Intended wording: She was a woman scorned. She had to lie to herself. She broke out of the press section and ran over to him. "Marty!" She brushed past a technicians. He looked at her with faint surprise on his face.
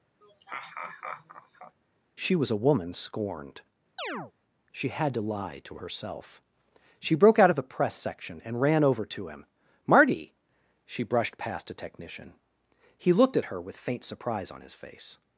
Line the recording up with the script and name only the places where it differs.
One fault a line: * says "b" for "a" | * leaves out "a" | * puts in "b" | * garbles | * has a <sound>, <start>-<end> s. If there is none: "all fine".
* has a laugh, 0.2-1.8 s
* has a chirp, 4.0-4.3 s
* says "technician" for "technicians"